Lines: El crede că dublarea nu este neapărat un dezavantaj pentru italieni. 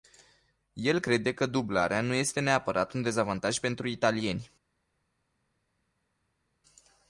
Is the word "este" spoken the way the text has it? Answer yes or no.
yes